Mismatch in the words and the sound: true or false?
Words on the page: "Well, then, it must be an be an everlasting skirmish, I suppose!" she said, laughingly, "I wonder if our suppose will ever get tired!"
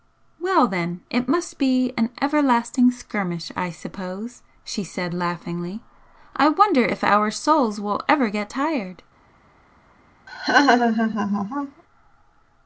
true